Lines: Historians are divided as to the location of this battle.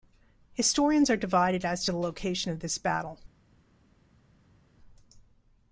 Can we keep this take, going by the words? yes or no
yes